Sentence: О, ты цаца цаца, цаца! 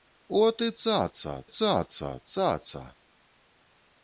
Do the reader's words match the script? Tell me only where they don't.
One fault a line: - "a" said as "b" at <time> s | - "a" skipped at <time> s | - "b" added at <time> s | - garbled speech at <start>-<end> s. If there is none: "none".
none